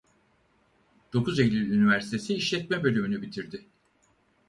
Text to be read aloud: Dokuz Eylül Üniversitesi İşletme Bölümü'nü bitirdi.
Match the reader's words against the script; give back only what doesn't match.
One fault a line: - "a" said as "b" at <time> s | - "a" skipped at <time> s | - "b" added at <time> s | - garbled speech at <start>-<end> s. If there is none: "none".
none